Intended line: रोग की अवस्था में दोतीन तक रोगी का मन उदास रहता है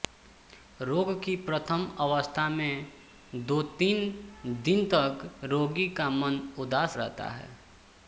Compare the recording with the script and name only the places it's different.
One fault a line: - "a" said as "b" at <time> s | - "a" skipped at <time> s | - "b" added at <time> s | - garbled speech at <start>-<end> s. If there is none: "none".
- "प्रथम" added at 1.4 s
- "दिन" added at 4.6 s